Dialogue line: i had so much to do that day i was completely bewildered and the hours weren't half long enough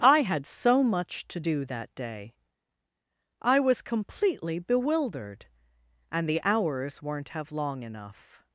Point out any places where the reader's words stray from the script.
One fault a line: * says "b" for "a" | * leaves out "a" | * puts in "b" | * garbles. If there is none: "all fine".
* says "have" for "half"